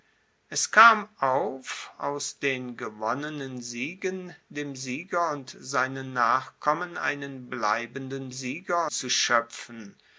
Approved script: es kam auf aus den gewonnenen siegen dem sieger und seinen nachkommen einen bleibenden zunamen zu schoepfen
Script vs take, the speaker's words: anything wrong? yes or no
yes